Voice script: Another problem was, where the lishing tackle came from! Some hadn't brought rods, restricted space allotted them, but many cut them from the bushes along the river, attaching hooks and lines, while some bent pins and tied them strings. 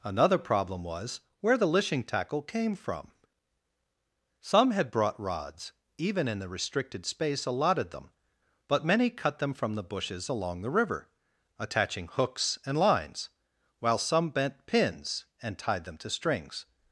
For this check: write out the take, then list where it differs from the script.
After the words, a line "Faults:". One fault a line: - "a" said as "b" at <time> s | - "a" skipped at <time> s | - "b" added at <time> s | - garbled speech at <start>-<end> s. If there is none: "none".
Another problem was, where the lishing tackle came from! Some had brought rods, even in the restricted space allotted them, but many cut them from the bushes along the river, attaching hooks and lines, while some bent pins and tied them to strings.
Faults:
- "hadn't" said as "had" at 4.7 s
- "even in the" added at 6.0 s
- "to" added at 16.0 s